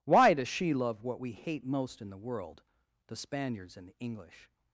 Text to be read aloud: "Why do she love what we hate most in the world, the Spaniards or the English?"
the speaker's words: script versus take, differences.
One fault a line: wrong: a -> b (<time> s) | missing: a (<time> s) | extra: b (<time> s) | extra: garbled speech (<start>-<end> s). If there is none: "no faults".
wrong: do -> does (0.3 s)
wrong: or -> and (3.8 s)